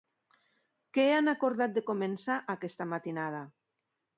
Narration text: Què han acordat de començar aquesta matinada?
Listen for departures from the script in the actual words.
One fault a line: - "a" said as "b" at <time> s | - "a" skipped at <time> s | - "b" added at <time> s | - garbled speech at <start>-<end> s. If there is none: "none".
none